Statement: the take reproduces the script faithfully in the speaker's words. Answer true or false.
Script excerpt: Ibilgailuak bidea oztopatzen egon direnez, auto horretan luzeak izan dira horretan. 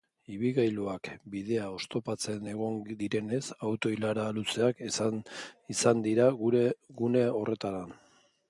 false